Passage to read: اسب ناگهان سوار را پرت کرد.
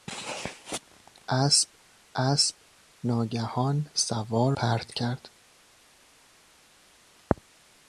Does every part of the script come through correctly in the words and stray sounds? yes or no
no